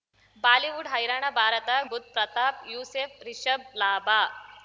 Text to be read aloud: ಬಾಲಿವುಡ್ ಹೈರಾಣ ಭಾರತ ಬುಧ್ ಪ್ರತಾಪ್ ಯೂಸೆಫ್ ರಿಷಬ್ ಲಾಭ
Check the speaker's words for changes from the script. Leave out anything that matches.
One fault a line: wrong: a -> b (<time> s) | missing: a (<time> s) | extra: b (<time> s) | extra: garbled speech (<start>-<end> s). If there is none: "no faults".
no faults